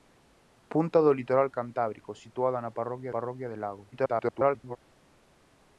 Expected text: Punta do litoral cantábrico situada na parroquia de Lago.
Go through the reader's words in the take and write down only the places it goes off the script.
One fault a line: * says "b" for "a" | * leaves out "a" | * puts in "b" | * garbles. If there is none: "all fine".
* puts in "parroquia"
* garbles